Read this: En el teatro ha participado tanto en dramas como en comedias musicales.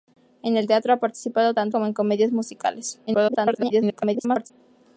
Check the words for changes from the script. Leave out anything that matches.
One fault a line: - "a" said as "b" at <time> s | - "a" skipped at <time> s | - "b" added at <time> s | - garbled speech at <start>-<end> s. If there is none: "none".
- "en dramas" skipped at 1.8 s
- garbled speech at 3.1-4.5 s